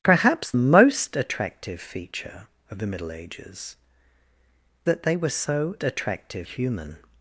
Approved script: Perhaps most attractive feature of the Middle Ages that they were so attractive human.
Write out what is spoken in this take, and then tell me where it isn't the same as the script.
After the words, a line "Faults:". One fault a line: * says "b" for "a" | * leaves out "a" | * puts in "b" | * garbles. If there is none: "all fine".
Perhaps most attractive feature of the Middle Ages that they were so attractive human.
Faults:
all fine